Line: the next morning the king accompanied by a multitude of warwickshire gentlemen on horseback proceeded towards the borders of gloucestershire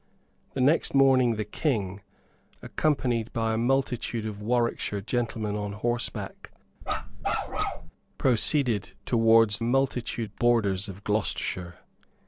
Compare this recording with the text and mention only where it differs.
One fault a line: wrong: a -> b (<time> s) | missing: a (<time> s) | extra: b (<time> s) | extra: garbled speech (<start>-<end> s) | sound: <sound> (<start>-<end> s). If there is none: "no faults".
sound: bark (6.8-7.9 s)
wrong: the -> multitude (9.6 s)